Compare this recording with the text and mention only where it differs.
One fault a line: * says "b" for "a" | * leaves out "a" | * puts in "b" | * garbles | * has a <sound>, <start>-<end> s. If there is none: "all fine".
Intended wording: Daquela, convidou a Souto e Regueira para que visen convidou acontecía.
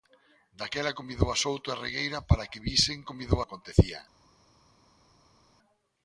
all fine